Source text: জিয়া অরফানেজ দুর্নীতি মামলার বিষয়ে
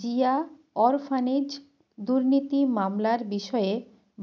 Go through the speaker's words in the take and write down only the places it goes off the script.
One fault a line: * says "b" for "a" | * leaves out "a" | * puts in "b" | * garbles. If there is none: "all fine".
all fine